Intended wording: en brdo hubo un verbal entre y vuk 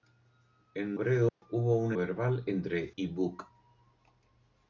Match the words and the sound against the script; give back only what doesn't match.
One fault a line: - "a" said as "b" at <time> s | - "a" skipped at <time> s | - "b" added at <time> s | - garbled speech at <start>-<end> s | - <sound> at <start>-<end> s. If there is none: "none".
- dropout at 1.3-1.4 s